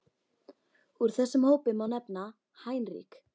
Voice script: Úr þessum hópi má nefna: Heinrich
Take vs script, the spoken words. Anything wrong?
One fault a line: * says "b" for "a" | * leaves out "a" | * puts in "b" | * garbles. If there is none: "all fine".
all fine